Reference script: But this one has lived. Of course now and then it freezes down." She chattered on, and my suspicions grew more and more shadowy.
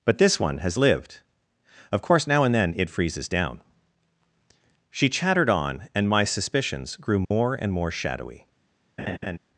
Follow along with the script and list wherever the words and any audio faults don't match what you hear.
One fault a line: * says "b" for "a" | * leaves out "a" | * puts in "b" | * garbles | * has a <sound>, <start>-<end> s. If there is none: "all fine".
* has a dropout, 7.2-7.3 s
* has a laugh, 9.0-9.4 s